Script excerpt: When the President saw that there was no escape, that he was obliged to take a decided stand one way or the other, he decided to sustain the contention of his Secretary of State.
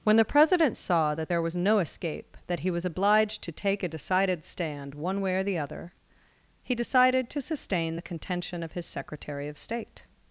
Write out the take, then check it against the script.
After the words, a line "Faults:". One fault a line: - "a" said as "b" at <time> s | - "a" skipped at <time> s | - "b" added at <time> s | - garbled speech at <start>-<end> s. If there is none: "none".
When the President saw that there was no escape, that he was obliged to take a decided stand one way or the other, he decided to sustain the contention of his Secretary of State.
Faults:
none